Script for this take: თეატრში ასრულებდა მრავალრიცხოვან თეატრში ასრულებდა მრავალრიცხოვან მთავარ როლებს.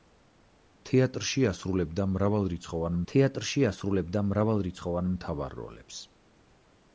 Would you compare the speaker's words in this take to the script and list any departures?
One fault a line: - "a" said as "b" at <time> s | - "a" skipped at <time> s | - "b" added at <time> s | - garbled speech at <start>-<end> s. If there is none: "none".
none